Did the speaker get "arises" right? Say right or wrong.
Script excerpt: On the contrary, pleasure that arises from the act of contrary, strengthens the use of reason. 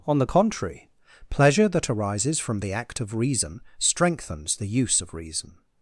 right